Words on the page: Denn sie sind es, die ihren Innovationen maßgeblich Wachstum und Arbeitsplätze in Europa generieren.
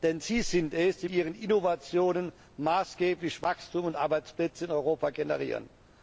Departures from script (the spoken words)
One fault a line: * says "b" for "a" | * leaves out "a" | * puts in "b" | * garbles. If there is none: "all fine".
all fine